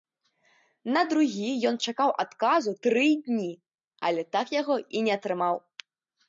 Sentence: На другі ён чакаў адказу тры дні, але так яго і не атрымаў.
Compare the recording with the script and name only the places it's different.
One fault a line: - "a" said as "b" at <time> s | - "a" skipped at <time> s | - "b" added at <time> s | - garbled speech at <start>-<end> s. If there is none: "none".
none